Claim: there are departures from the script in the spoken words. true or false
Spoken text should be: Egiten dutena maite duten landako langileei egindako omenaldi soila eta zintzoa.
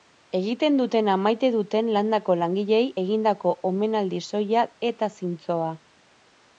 false